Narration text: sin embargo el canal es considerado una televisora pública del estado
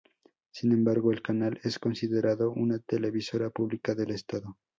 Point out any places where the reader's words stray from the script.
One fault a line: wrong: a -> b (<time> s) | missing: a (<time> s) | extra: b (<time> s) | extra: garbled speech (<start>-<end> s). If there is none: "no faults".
no faults